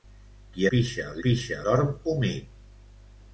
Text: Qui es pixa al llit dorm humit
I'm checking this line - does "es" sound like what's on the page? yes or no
no